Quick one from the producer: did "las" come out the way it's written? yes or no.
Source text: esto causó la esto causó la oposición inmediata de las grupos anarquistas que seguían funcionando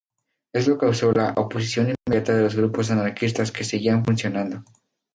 no